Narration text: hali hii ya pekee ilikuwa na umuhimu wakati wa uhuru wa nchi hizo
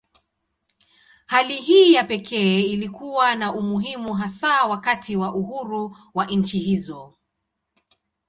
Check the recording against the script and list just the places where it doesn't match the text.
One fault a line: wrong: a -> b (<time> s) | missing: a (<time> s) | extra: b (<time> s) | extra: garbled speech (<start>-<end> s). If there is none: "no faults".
extra: hasa (4.1 s)